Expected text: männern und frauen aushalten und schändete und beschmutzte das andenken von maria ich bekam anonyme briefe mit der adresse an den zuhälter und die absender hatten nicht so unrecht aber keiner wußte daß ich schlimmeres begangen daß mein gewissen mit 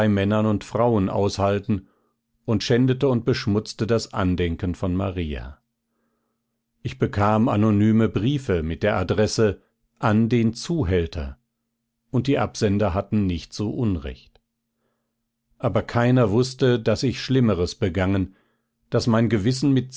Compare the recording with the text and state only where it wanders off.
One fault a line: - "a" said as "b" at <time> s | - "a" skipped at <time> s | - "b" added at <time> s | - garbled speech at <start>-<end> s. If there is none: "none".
none